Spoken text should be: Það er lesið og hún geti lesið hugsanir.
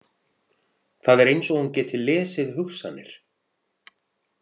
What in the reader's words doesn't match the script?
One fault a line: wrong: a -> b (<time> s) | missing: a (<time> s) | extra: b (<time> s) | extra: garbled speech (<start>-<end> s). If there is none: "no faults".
wrong: lesið -> eins (1.3 s)